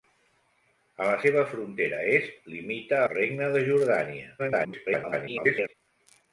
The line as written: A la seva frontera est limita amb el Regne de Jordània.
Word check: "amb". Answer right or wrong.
wrong